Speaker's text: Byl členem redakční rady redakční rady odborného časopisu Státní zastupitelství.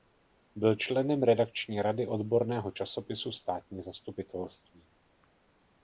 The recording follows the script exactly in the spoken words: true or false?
false